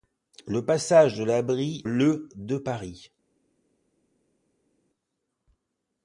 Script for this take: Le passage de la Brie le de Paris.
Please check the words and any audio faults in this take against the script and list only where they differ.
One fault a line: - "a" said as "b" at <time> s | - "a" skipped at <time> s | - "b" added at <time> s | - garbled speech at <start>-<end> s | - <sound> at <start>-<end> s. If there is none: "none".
none